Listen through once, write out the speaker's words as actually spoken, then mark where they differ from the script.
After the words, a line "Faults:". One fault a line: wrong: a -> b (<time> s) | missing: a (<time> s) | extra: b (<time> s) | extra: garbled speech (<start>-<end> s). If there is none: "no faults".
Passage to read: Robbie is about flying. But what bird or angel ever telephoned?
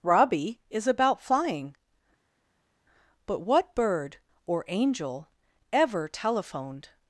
Robbie is about flying. But what bird or angel ever telephoned?
Faults:
no faults